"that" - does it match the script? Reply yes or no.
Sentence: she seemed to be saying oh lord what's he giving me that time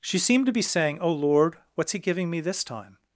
no